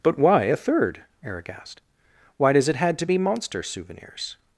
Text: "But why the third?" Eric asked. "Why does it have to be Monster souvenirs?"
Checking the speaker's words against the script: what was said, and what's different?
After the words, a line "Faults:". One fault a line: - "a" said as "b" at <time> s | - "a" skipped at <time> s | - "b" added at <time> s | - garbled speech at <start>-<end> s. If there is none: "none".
"But why a third?" Eric asked. "Why does it had to be Monster souvenirs?"
Faults:
- "the" said as "a" at 0.4 s
- "have" said as "had" at 2.8 s